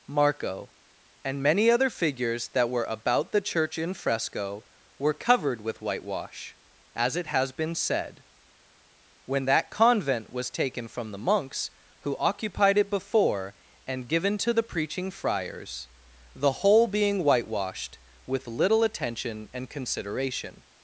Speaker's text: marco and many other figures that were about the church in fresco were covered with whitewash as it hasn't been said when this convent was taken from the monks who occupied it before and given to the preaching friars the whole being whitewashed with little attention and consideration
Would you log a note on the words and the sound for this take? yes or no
yes